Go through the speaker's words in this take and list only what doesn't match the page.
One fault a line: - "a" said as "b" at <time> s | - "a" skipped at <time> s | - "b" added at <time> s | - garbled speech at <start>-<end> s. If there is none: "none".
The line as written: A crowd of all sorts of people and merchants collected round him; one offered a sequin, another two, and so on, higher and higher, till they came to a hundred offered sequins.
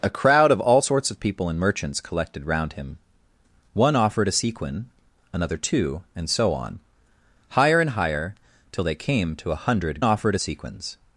none